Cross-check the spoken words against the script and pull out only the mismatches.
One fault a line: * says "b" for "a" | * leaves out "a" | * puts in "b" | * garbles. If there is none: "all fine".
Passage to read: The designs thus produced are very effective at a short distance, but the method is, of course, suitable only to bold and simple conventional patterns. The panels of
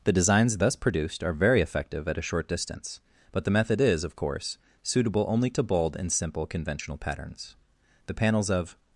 all fine